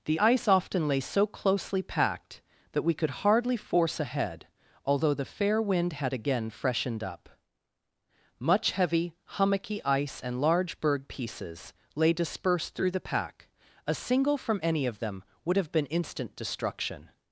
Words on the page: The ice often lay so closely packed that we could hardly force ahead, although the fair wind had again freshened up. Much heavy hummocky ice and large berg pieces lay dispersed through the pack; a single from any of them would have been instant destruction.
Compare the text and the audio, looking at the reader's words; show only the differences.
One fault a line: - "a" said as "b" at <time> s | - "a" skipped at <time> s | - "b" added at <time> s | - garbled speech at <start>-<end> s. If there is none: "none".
none